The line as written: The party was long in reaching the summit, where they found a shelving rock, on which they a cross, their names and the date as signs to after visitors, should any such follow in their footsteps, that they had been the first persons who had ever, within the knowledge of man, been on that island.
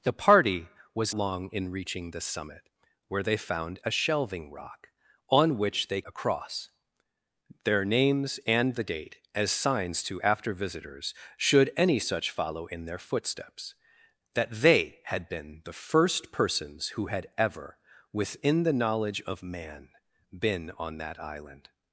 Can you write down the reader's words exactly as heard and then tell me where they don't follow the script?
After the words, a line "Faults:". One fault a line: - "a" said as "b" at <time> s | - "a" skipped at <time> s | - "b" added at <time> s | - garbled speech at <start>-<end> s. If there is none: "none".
The party was long in reaching the summit, where they found a shelving rock, on which they a cross, their names and the date as signs to after visitors, should any such follow in their footsteps, that they had been the first persons who had ever, within the knowledge of man, been on that island.
Faults:
none